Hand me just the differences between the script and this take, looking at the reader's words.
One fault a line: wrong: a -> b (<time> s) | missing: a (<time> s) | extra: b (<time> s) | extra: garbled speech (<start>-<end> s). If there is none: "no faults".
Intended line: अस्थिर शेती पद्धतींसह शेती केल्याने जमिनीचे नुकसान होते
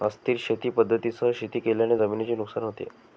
no faults